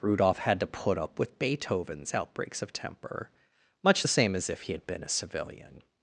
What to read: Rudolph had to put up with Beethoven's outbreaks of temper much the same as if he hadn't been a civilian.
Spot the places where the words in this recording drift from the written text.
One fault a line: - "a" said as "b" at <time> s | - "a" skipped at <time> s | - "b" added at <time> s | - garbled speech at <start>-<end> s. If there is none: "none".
- "hadn't" said as "had" at 4.7 s